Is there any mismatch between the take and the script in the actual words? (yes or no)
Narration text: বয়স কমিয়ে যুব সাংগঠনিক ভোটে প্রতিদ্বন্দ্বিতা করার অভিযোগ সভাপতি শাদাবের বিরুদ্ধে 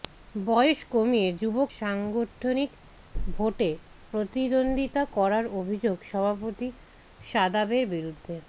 no